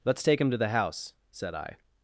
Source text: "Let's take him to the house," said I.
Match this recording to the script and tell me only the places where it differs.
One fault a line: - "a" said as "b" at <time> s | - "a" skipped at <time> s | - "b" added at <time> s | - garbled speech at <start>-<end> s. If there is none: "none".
none